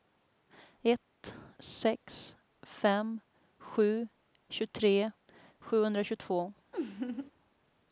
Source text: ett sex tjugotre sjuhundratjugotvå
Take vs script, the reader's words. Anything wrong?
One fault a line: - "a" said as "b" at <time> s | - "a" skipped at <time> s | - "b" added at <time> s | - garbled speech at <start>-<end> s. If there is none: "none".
- "fem sju" added at 2.6 s